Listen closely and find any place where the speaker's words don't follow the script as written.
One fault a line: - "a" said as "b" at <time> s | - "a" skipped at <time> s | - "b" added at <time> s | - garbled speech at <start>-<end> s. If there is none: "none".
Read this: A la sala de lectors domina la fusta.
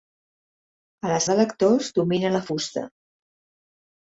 - "sala" skipped at 1.2 s